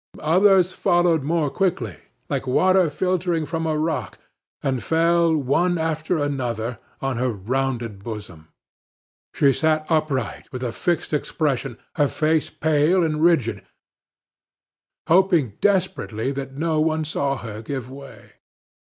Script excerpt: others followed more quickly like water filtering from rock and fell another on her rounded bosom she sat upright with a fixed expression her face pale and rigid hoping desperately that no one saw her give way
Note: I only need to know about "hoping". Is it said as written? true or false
true